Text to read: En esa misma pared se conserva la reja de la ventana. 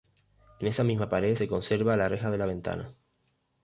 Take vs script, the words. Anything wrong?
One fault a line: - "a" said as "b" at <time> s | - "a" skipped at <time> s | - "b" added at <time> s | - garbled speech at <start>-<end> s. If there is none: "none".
none